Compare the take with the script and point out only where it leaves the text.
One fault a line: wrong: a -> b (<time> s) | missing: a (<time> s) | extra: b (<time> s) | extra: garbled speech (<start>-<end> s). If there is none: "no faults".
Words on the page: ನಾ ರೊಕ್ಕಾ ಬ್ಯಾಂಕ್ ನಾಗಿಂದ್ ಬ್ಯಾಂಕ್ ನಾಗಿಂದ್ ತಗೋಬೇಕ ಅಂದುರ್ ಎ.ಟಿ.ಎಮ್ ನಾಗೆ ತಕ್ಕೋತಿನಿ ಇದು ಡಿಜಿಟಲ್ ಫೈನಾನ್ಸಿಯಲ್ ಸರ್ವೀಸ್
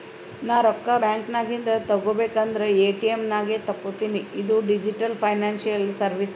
missing: ಬ್ಯಾಂಕ್ ನಾಗಿಂದ್ (1.7 s)